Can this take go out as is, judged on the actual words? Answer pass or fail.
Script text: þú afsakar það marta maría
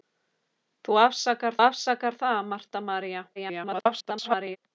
fail